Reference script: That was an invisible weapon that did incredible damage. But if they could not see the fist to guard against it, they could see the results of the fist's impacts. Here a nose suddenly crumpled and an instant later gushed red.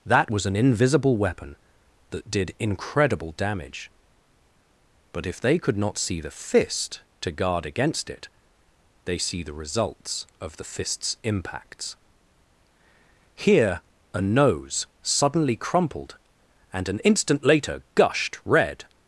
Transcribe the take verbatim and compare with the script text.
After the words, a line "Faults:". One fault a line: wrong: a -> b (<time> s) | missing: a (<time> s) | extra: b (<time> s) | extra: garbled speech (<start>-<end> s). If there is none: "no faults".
That was an invisible weapon that did incredible damage. But if they could not see the fist to guard against it, they see the results of the fist's impacts. Here a nose suddenly crumpled and an instant later gushed red.
Faults:
missing: could (9.2 s)